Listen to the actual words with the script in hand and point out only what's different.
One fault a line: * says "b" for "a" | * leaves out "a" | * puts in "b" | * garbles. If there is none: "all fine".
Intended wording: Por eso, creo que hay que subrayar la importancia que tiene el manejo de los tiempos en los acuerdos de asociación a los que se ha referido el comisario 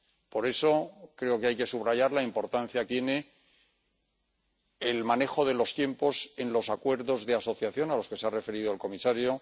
* leaves out "que"